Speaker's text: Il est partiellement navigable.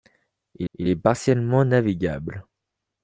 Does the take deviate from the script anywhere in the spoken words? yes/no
yes